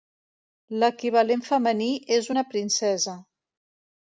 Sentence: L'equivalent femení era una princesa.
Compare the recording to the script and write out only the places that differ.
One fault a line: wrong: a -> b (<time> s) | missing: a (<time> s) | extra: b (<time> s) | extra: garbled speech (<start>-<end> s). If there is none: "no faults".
wrong: era -> és (2.2 s)